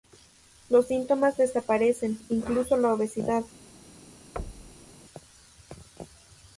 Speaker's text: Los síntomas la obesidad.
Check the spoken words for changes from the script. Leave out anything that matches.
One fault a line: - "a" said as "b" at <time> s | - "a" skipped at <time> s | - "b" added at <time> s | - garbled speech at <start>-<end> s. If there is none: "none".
- "desaparecen incluso" added at 1.4 s